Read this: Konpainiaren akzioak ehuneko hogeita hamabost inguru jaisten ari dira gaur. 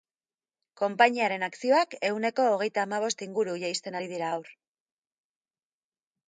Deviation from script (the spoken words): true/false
false